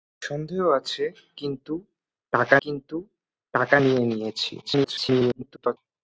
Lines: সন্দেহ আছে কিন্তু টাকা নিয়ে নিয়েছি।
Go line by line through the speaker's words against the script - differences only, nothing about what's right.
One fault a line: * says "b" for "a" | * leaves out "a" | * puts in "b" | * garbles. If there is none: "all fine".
* puts in "কিন্তু টাকা"
* garbles